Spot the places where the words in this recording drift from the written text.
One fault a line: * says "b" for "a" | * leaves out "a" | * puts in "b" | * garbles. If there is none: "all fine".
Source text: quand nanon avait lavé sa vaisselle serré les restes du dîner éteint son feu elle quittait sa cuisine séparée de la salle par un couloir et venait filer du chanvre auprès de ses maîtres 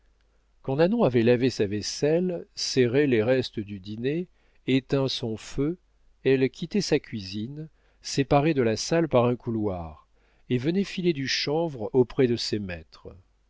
all fine